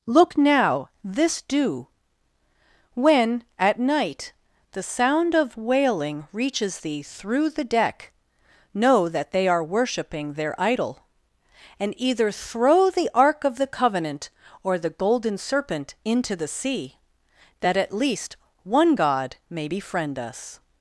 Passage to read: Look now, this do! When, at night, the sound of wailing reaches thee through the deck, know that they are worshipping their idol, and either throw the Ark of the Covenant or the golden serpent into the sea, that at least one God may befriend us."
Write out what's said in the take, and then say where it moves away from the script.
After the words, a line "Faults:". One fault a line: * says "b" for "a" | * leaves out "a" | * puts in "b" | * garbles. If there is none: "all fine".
Look now, this do! When, at night, the sound of wailing reaches thee through the deck, know that they are worshipping their idol, and either throw the Ark of the Covenant or the golden serpent into the sea, that at least one God may befriend us."
Faults:
all fine